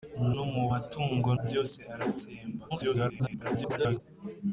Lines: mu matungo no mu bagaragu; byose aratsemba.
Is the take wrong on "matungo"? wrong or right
wrong